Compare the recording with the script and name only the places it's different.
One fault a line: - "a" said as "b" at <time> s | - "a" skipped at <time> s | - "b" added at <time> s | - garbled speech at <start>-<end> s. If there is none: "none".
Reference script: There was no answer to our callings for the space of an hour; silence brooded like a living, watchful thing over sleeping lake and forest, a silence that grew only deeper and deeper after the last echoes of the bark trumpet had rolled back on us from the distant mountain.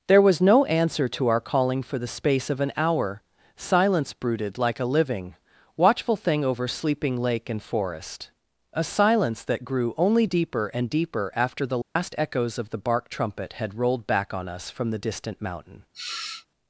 - "callings" said as "calling" at 1.4 s